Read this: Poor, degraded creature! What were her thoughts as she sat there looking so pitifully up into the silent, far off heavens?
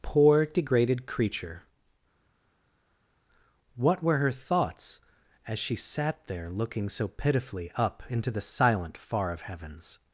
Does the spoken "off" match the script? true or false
false